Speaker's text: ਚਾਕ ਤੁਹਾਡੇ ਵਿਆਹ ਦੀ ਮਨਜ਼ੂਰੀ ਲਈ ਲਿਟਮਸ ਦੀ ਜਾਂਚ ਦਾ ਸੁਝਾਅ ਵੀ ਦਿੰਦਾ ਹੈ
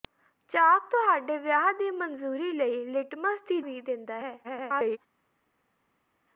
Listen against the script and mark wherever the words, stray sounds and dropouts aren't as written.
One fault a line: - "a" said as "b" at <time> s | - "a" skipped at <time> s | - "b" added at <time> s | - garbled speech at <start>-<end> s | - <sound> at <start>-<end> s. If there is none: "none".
- "ਜਾਂਚ ਦਾ ਸੁਝਾਅ" skipped at 3.6 s
- garbled speech at 4.4-5.0 s